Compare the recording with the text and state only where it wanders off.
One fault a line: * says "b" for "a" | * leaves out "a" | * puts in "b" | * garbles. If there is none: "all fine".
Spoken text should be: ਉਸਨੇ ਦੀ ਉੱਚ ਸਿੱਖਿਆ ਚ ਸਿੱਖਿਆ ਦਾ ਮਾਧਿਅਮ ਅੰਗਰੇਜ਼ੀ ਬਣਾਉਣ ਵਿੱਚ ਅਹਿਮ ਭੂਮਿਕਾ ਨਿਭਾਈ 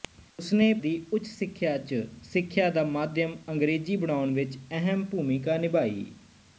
all fine